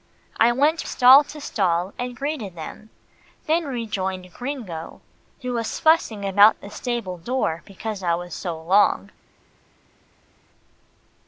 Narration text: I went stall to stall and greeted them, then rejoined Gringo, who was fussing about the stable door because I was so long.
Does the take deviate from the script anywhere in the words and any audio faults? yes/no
no